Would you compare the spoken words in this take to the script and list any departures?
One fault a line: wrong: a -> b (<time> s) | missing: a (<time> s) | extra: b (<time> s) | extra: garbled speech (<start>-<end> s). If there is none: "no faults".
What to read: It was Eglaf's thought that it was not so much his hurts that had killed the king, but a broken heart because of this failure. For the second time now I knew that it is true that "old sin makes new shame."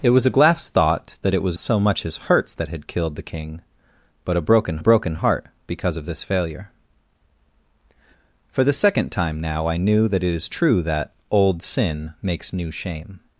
missing: not (1.6 s)
extra: broken (4.8 s)